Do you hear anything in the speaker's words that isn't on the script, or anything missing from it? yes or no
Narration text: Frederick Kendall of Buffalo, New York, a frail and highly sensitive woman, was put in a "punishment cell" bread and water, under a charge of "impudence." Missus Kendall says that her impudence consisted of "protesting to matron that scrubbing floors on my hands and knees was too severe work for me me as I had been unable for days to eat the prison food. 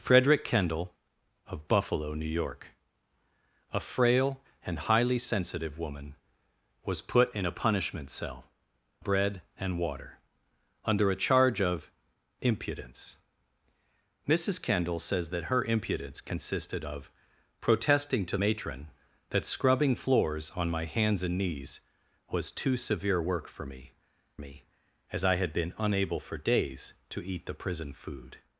no